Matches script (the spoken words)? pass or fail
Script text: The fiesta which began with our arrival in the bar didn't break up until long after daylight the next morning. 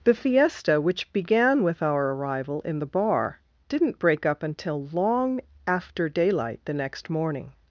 pass